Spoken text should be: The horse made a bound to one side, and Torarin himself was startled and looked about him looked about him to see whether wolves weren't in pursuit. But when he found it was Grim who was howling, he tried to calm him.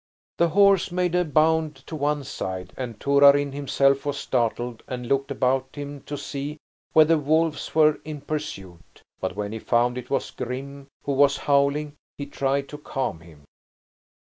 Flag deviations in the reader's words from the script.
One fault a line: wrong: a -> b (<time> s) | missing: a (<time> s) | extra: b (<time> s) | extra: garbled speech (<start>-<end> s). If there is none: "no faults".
missing: looked about him (6.0 s)
wrong: weren't -> were (7.7 s)